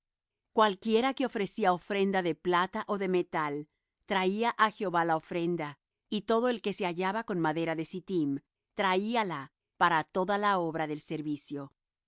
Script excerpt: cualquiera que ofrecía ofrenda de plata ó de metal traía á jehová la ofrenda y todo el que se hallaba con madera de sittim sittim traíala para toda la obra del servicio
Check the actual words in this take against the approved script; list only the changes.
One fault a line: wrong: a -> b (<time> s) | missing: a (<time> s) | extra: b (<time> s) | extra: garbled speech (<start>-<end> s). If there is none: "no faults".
missing: sittim (8.4 s)